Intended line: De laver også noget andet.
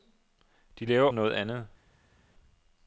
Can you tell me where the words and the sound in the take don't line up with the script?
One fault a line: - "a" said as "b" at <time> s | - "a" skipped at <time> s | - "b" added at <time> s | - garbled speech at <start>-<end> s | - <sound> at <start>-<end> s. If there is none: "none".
- "også" skipped at 1.1 s